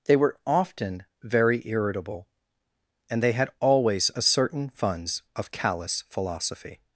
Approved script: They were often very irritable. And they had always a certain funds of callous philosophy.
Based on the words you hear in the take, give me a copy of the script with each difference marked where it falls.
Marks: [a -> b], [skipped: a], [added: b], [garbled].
They were often very irritable. And they had always a certain funds of callous philosophy.